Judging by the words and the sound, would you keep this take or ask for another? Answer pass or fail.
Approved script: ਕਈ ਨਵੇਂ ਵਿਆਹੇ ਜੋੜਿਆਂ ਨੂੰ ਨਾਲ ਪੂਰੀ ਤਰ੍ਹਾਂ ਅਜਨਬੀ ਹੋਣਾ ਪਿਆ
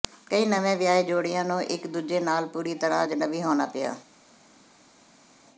fail